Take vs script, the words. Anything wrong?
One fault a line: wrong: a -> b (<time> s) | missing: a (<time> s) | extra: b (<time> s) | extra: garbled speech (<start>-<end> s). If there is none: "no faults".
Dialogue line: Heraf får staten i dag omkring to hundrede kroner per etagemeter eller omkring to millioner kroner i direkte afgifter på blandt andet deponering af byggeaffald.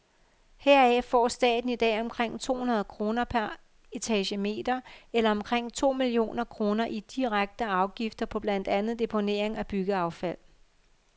no faults